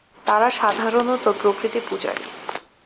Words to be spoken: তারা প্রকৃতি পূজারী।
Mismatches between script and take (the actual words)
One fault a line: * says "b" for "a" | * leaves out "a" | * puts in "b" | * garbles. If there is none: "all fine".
* puts in "সাধারণত"